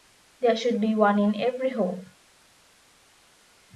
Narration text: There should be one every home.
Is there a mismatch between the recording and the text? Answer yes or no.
yes